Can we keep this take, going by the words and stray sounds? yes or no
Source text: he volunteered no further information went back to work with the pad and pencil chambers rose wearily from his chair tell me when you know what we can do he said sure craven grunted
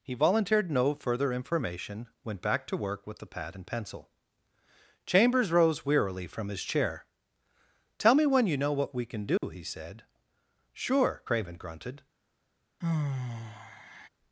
no